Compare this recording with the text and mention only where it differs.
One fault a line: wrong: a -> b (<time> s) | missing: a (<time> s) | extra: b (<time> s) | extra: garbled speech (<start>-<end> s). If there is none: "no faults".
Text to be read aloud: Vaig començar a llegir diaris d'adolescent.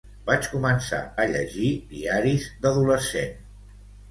no faults